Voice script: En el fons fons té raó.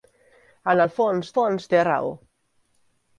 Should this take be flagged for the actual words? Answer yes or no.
no